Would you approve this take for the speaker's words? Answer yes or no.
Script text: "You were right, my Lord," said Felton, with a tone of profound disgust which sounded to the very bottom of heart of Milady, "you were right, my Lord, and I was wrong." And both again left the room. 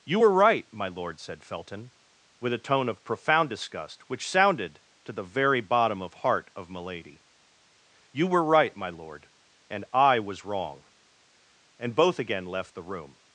yes